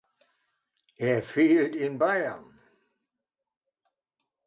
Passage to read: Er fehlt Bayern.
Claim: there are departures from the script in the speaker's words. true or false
true